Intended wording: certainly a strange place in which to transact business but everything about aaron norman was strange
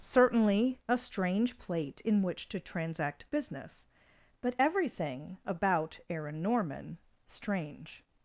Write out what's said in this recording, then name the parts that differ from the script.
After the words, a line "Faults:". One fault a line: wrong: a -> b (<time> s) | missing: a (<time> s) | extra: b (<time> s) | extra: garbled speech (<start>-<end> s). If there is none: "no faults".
certainly a strange plate in which to transact business but everything about aaron norman strange
Faults:
wrong: place -> plate (1.6 s)
missing: was (7.0 s)